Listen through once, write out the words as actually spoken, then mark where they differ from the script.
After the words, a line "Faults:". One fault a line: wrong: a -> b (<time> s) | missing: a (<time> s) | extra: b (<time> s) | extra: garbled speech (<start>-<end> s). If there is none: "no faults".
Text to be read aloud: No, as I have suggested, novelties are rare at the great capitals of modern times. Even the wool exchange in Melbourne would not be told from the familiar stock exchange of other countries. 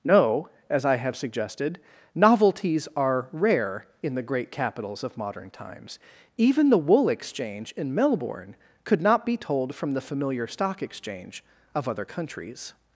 No, as I have suggested, novelties are rare in the great capitals of modern times. Even the wool exchange in Melbourne could not be told from the familiar stock exchange of other countries.
Faults:
wrong: at -> in (4.0 s)
wrong: would -> could (8.8 s)